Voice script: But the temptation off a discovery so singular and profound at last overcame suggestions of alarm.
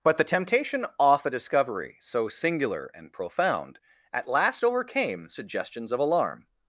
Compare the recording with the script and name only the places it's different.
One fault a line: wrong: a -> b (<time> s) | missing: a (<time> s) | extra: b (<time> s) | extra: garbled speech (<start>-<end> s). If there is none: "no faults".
no faults